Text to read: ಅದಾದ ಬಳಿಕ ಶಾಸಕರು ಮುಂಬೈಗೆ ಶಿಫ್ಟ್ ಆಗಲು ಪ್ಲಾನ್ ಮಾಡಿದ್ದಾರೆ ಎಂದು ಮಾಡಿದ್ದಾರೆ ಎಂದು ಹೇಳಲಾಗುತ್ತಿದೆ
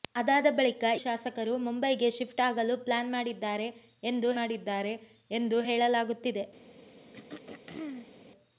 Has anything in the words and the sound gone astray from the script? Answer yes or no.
yes